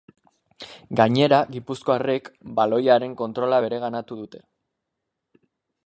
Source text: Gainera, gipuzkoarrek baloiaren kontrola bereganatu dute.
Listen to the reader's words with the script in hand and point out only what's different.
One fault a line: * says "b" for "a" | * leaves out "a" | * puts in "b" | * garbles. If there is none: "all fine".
all fine